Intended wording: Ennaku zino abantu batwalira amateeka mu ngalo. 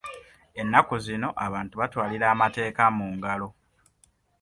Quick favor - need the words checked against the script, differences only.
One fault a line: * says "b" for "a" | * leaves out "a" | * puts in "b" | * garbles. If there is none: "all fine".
all fine